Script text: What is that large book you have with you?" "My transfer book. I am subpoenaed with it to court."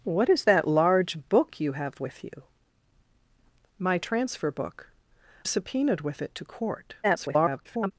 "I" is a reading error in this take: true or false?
true